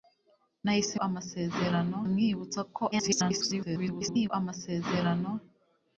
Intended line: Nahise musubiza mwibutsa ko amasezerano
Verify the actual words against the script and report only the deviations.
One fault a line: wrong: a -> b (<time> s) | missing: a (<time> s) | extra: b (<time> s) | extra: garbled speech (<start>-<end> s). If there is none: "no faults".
wrong: musubiza -> amasezerano (1.1 s)
extra: garbled speech (2.9-4.3 s)